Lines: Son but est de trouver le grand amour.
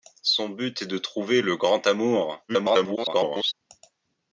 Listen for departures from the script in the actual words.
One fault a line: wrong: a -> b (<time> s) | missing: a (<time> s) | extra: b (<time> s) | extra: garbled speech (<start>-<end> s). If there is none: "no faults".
extra: garbled speech (2.5-3.5 s)